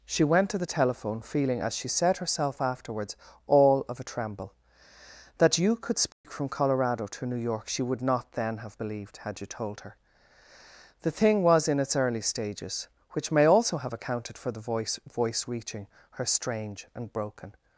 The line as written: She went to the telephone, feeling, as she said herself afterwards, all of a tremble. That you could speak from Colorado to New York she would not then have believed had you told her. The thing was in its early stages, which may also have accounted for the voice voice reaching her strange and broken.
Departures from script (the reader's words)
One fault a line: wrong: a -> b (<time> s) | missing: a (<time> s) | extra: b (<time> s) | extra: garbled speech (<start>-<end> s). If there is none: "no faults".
no faults